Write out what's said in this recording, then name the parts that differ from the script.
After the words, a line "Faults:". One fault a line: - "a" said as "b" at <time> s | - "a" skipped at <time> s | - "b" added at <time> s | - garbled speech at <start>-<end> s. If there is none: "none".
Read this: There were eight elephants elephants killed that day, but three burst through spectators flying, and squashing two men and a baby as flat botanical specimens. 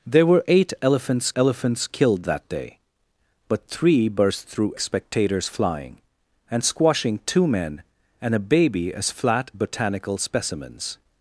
There were eight elephants elephants killed that day, but three burst through spectators flying, and squashing two men and a baby as flat botanical specimens.
Faults:
none